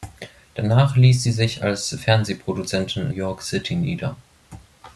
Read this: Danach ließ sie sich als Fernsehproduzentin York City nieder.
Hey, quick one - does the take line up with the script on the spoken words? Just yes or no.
yes